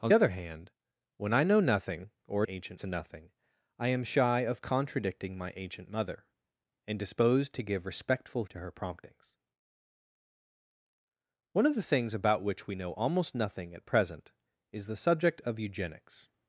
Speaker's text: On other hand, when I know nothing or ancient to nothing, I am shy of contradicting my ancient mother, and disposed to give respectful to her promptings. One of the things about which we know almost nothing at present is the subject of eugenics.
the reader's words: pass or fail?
pass